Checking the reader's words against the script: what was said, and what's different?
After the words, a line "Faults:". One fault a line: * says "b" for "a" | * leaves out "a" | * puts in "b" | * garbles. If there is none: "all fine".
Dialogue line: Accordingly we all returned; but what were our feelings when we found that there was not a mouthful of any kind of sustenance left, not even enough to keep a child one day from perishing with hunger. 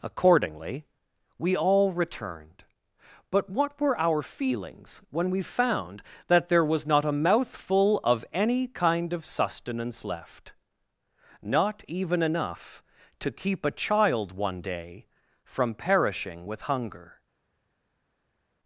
Accordingly we all returned; but what were our feelings when we found that there was not a mouthful of any kind of sustenance left, not even enough to keep a child one day from perishing with hunger.
Faults:
all fine